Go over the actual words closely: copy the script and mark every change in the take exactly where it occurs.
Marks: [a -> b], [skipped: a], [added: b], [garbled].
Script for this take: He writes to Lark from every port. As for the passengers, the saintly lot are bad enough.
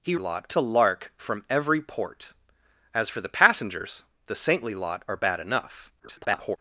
He [writes -> lot] to Lark from every port. As for the passengers, the saintly lot are bad enough. [garbled]